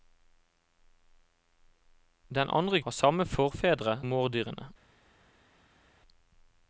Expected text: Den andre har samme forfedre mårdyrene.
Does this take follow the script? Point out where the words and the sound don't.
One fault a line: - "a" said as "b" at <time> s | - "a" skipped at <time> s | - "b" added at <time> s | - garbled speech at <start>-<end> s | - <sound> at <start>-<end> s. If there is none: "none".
none